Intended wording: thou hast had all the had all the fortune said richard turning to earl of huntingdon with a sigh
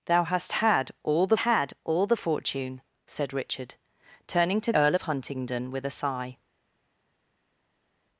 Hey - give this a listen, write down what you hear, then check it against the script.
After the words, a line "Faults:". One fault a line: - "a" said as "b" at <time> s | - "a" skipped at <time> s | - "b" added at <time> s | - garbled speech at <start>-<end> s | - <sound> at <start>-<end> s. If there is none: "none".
thou hast had all the had all the fortune said richard turning to earl of huntingdon with a sigh
Faults:
none